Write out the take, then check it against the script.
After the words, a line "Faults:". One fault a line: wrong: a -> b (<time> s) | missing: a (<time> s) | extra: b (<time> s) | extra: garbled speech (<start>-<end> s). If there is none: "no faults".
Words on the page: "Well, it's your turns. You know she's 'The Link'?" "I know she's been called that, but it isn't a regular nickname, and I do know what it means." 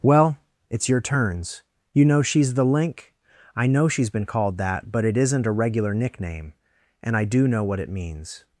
"Well, it's your turns. You know she's 'The Link'?" "I know she's been called that, but it isn't a regular nickname, and I do know what it means."
Faults:
no faults